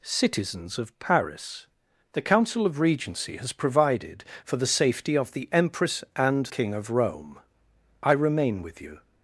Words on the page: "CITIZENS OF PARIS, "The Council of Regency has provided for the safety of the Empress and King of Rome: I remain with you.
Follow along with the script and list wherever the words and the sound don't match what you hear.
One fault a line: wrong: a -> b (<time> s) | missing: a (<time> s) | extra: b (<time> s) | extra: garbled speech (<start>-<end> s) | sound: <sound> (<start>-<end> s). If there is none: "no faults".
no faults